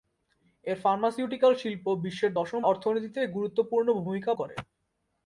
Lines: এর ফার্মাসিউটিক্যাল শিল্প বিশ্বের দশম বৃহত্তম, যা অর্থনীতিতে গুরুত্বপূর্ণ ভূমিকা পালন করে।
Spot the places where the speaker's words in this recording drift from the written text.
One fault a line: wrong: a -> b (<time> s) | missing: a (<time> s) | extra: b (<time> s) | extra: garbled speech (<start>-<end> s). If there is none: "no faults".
missing: বৃহত্তম যা (2.6 s)
missing: পালন (4.3 s)